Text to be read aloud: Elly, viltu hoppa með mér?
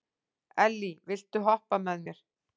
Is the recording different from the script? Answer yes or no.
no